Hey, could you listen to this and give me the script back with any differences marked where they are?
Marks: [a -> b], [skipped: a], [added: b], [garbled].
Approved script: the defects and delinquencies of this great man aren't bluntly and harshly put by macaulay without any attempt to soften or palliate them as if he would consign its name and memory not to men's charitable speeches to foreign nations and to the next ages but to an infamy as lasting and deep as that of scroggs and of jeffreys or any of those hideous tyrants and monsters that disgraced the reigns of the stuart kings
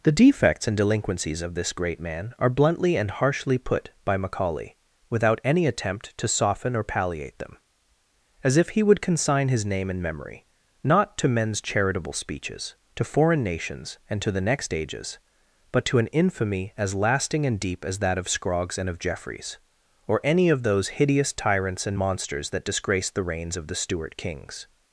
the defects and delinquencies of this great man [aren't -> are] bluntly and harshly put by macaulay without any attempt to soften or palliate them as if he would consign [its -> his] name and memory not to men's charitable speeches to foreign nations and to the next ages but to an infamy as lasting and deep as that of scroggs and of jeffreys or any of those hideous tyrants and monsters that disgraced the reigns of the stuart kings